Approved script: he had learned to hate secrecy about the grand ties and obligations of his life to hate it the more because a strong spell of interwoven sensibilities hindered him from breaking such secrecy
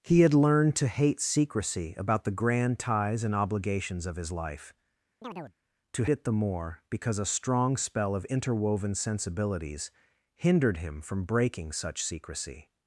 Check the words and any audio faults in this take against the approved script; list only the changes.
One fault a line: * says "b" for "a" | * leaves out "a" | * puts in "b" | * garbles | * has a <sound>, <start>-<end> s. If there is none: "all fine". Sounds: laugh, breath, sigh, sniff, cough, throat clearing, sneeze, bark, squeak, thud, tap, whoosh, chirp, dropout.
* has a chirp, 5.2-5.6 s
* leaves out "hate"